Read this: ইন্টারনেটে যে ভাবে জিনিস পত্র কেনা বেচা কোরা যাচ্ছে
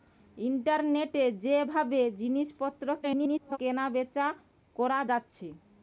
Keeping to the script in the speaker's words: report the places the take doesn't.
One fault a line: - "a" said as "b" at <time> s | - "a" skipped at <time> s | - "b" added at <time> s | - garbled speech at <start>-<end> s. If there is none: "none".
- garbled speech at 3.0-3.6 s